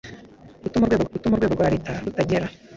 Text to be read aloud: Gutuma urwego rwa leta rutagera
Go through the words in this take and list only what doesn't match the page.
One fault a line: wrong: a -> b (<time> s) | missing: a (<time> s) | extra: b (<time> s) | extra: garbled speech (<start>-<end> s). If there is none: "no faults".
extra: gutuma urwego (1.1 s)